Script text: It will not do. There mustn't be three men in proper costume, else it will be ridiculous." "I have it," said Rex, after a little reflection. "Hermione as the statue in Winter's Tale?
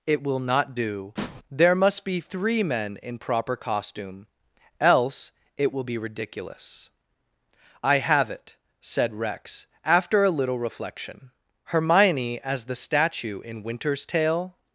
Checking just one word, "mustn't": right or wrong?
wrong